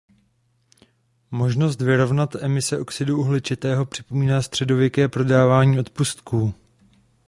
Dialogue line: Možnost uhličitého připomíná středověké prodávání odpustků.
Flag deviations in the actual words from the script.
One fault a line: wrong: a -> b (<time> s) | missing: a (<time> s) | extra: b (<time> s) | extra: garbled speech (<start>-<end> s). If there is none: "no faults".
extra: vyrovnat emise oxidu (1.8 s)